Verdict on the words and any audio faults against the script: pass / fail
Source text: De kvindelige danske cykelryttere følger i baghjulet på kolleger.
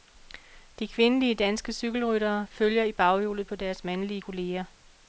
fail